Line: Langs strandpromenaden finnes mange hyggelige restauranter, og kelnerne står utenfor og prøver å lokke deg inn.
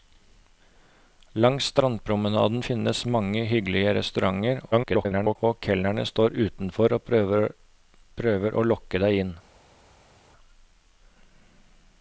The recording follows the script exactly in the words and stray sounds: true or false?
false